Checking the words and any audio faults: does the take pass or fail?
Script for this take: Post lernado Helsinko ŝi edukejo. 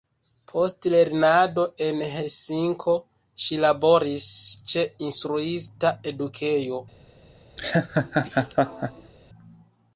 fail